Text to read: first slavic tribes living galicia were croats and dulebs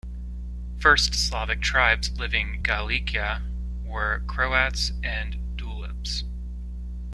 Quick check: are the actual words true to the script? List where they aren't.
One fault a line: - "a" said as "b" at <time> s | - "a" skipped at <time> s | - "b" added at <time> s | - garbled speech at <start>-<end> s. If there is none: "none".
none